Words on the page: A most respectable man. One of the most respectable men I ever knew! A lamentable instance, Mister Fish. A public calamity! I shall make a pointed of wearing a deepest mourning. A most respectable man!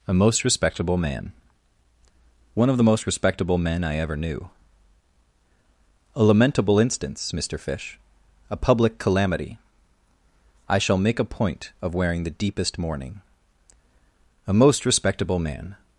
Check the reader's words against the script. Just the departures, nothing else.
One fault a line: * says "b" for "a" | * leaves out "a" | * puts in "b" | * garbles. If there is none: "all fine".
* says "point" for "pointed"
* says "the" for "a"